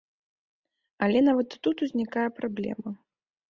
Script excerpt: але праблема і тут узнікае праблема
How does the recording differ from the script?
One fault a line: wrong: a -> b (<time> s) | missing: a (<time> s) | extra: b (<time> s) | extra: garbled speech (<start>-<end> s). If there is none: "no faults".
wrong: праблема -> нават (1.3 s)